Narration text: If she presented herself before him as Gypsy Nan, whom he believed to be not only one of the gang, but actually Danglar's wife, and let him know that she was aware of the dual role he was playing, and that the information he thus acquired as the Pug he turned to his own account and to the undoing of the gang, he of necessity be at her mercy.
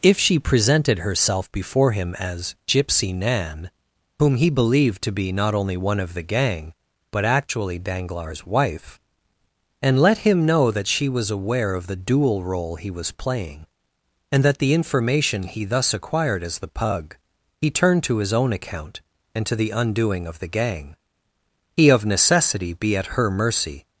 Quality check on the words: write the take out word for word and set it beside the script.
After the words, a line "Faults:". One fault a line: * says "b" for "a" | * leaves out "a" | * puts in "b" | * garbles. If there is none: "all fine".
If she presented herself before him as Gypsy Nan, whom he believed to be not only one of the gang, but actually Danglar's wife, and let him know that she was aware of the dual role he was playing, and that the information he thus acquired as the Pug he turned to his own account and to the undoing of the gang, he of necessity be at her mercy.
Faults:
all fine